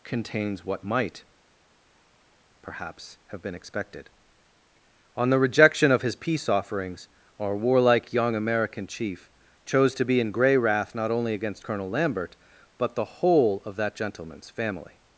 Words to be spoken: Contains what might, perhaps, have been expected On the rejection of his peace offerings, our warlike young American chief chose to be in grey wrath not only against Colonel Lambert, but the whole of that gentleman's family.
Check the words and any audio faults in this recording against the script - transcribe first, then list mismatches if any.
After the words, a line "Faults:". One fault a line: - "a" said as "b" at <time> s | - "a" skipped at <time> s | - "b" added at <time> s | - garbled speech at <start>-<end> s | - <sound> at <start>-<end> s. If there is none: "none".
Contains what might, perhaps, have been expected On the rejection of his peace offerings, our warlike young American chief chose to be in grey wrath not only against Colonel Lambert, but the whole of that gentleman's family.
Faults:
none